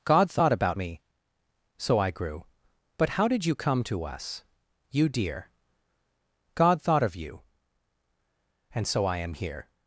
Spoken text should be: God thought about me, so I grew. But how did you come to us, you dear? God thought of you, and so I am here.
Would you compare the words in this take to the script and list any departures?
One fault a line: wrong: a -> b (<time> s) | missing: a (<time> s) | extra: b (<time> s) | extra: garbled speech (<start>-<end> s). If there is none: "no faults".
no faults